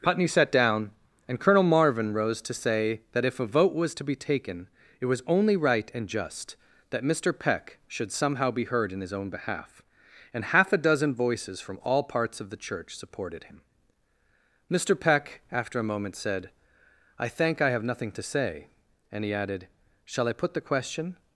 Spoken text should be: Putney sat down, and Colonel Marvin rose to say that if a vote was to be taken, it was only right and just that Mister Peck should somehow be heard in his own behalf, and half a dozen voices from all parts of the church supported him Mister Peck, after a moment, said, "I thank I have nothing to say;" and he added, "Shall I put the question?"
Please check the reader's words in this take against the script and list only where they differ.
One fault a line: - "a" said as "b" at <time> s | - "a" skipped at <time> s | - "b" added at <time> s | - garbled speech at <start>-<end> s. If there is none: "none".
none